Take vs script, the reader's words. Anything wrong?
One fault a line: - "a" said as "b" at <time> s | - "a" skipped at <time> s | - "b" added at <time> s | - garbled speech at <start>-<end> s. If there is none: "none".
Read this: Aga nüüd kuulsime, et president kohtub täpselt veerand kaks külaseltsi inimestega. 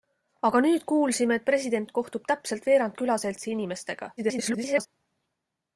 - "kaks" skipped at 3.0 s
- garbled speech at 4.2-4.9 s